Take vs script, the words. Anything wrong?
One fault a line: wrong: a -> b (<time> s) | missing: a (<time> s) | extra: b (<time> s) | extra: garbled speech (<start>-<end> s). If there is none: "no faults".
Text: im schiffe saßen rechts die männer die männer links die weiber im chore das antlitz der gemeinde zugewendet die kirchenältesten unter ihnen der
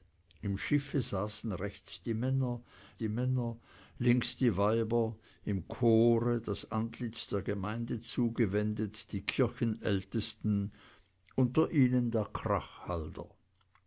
no faults